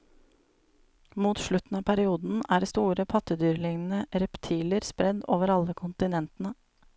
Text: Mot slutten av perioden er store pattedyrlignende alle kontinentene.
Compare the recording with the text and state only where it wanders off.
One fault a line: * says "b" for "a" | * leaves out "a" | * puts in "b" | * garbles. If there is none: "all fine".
* puts in "reptiler spredd over"